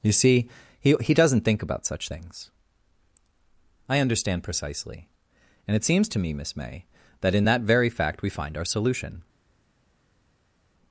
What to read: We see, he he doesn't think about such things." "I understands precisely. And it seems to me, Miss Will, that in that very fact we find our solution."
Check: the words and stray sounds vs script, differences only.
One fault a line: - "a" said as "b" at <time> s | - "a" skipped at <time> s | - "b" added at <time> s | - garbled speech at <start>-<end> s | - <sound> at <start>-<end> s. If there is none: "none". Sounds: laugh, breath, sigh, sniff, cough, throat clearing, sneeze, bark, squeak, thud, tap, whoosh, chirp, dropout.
- "We" said as "You" at 0.0 s
- "understands" said as "understand" at 4.0 s
- "Will" said as "May" at 6.5 s